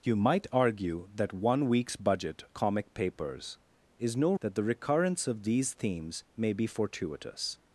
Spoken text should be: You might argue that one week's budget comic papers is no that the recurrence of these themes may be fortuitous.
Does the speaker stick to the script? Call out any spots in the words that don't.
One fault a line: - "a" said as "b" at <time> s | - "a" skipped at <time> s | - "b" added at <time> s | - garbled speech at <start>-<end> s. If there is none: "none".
none